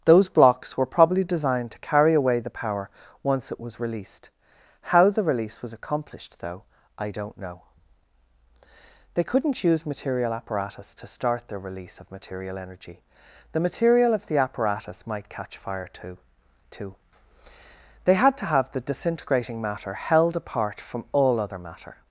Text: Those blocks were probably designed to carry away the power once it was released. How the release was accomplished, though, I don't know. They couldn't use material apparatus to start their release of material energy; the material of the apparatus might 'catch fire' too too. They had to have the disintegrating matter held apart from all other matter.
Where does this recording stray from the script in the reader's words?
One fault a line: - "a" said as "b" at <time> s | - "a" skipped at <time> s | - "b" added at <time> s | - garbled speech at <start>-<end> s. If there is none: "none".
none